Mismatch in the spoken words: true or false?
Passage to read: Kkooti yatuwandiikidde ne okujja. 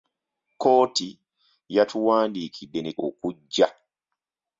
false